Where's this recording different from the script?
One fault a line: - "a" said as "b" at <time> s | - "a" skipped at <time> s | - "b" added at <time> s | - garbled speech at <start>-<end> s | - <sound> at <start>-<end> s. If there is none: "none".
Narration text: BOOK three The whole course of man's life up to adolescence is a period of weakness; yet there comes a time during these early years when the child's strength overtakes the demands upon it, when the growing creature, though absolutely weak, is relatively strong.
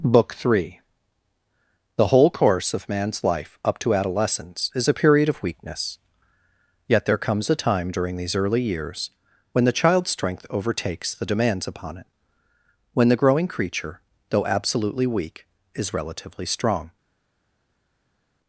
none